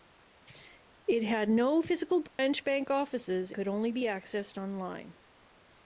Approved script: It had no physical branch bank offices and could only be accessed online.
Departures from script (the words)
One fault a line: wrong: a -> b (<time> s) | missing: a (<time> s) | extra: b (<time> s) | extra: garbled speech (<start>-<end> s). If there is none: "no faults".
missing: and (3.5 s)